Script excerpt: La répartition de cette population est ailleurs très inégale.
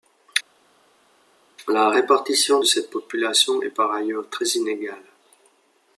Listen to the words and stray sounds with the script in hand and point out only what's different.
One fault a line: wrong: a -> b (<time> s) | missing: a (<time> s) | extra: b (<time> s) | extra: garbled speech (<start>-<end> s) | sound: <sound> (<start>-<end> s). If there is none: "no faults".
extra: par (3.7 s)